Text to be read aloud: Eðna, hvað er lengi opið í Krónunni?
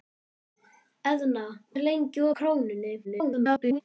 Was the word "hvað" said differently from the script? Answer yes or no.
yes